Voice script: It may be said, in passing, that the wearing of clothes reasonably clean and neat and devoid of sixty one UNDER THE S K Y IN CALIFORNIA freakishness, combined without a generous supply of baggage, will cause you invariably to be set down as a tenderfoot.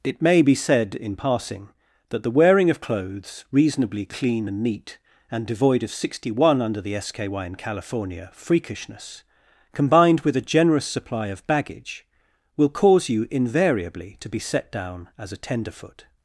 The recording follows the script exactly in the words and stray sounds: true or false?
false